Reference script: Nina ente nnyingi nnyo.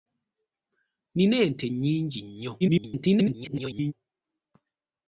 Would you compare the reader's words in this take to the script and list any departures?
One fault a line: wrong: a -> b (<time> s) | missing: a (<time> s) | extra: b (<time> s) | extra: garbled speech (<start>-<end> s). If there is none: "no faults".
extra: garbled speech (2.6-3.9 s)